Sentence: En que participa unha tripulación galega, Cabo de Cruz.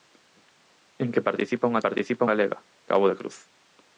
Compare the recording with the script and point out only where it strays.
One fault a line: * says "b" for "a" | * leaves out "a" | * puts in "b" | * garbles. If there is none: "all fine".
* says "participa" for "tripulación"